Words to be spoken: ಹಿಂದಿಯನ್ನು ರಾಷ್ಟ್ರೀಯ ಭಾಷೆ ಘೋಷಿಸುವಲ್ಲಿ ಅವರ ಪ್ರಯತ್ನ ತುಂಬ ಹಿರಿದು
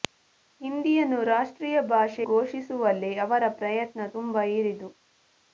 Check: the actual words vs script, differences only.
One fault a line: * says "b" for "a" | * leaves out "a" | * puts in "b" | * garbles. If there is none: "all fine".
all fine